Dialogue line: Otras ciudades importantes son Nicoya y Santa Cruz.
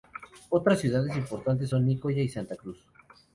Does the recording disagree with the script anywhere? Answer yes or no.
no